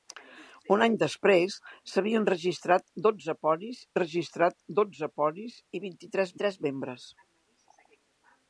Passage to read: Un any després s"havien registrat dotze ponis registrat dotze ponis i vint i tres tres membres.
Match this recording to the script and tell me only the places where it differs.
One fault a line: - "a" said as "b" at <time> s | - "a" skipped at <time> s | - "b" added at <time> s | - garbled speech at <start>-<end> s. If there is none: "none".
none